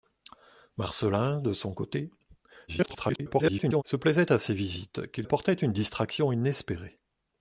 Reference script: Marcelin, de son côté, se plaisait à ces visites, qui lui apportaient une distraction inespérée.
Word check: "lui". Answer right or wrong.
wrong